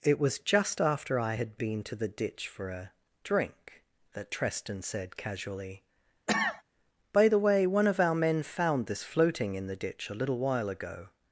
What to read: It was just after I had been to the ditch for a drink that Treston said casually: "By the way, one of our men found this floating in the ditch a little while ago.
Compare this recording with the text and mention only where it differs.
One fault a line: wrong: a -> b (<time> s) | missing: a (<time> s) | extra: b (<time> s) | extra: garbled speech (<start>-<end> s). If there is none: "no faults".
no faults